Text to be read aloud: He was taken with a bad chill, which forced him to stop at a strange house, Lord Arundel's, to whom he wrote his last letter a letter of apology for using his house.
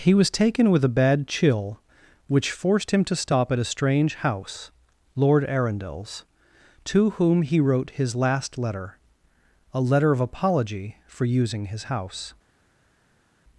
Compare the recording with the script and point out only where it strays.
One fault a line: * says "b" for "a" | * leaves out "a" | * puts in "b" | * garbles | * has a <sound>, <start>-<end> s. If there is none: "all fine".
all fine